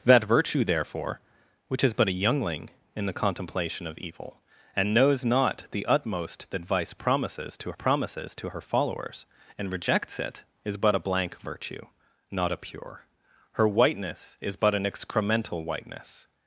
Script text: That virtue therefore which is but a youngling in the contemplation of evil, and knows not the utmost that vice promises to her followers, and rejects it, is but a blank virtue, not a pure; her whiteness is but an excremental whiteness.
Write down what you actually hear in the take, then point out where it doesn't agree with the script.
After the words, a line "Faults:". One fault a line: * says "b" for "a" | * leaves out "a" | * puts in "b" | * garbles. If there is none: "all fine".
That virtue therefore which is but a youngling in the contemplation of evil, and knows not the utmost that vice promises to promises to her followers, and rejects it, is but a blank virtue, not a pure; her whiteness is but an excremental whiteness.
Faults:
* puts in "promises to"